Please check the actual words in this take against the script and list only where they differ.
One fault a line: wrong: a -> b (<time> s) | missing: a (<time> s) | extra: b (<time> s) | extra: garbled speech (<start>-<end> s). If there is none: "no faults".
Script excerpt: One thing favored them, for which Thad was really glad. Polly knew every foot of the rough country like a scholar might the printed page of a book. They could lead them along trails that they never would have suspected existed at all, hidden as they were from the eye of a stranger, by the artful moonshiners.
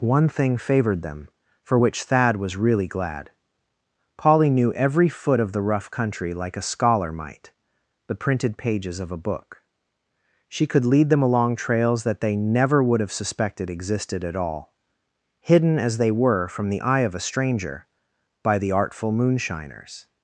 wrong: page -> pages (8.6 s)
wrong: They -> She (10.5 s)